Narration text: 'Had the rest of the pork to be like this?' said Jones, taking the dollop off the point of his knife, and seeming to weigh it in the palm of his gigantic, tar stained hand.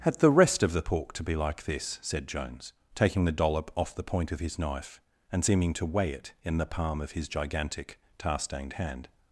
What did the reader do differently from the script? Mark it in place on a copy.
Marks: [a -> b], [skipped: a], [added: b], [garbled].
'Had the rest of the pork to be like this?' said Jones, taking the dollop off the point of his knife, and seeming to weigh it in the palm of his gigantic, tar stained hand.